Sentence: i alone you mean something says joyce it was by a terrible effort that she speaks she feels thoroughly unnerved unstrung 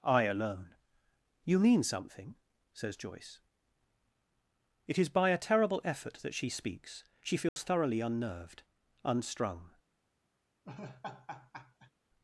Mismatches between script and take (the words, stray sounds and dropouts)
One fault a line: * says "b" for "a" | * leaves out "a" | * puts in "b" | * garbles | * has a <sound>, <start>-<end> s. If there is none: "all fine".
* says "is" for "was"
* has a dropout, 7.5-7.6 s
* has a laugh, 10.6-11.9 s